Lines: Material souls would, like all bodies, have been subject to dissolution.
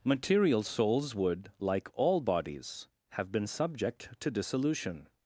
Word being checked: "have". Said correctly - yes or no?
yes